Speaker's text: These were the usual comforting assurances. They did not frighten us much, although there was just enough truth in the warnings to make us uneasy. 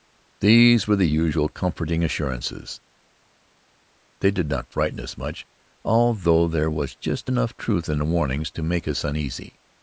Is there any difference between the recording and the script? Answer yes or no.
no